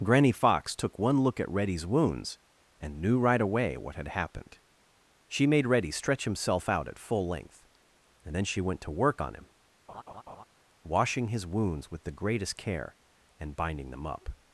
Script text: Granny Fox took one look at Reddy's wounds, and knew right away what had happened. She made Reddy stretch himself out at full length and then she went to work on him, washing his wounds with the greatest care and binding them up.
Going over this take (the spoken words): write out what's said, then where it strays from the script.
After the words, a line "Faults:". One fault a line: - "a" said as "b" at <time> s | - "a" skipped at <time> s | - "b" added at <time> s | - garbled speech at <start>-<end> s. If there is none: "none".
Granny Fox took one look at Reddy's wounds, and knew right away what had happened. She made Reddy stretch himself out at full length and then she went to work on him, washing his wounds with the greatest care and binding them up.
Faults:
none